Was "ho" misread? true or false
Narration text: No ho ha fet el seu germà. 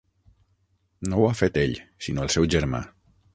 false